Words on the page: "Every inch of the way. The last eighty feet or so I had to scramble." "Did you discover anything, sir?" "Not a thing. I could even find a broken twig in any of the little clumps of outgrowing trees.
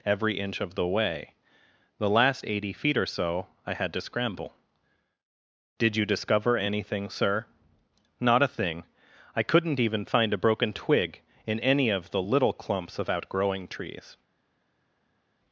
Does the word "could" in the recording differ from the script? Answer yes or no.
yes